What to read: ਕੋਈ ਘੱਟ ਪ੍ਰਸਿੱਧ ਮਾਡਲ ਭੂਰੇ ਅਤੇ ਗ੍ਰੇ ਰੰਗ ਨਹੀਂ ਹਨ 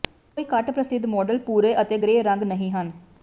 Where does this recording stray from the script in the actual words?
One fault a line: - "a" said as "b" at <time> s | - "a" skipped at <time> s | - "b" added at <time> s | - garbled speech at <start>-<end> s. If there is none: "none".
none